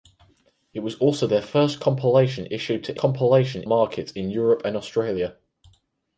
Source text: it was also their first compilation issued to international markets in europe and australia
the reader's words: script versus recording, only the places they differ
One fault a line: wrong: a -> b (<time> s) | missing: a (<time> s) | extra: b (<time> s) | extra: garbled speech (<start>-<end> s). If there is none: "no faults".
wrong: international -> compilation (3.0 s)